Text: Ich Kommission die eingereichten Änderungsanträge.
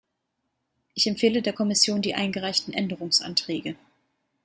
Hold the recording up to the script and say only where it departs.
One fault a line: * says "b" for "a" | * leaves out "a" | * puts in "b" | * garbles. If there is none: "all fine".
* puts in "empfehle der"